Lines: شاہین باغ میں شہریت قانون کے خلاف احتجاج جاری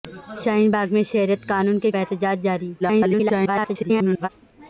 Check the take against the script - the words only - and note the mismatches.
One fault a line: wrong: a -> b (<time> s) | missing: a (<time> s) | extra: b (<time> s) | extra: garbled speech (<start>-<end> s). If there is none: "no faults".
missing: خلاف (1.9 s)
extra: garbled speech (2.8-4.3 s)